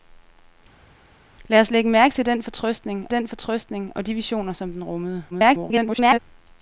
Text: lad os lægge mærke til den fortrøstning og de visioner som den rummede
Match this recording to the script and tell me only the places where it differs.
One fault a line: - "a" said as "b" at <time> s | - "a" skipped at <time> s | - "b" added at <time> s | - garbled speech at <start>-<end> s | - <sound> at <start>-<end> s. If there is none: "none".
- "den fortrøstning" added at 3.1 s
- garbled speech at 5.3-6.2 s